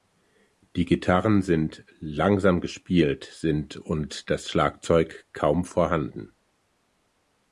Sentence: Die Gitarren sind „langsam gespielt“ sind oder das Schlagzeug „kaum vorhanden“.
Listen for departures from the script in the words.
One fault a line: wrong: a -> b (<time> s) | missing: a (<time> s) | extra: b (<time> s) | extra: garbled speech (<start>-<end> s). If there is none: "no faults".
wrong: oder -> und (3.8 s)